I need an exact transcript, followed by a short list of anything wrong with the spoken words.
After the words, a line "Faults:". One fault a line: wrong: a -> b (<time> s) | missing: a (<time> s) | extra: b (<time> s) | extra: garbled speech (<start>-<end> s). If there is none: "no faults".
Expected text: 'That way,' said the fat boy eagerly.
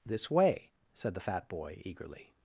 'This way,' said the fat boy eagerly.
Faults:
wrong: That -> This (0.1 s)